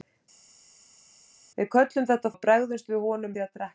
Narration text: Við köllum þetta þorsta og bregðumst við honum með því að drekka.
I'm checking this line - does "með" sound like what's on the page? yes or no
no